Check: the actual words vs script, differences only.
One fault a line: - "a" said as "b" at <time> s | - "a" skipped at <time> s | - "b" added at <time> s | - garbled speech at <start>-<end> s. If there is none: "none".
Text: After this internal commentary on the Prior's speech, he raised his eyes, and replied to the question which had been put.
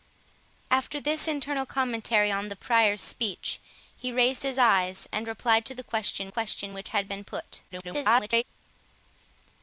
- "question" added at 6.3 s
- garbled speech at 7.7-8.4 s